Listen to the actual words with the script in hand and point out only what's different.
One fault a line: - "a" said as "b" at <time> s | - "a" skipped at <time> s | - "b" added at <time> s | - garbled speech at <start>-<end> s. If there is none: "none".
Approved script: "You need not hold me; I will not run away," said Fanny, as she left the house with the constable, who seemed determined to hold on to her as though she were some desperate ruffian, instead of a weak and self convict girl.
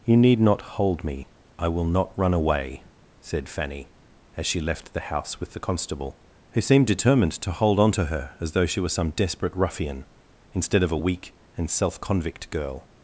none